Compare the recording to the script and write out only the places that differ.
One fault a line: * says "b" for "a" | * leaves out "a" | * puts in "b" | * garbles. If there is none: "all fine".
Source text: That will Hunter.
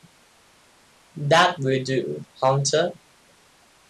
* puts in "do"